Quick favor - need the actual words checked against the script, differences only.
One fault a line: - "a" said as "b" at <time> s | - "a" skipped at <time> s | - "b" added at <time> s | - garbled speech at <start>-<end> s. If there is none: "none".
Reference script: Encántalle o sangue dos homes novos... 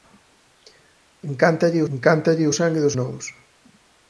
- "encántalle" added at 1.9 s
- "homes" skipped at 3.0 s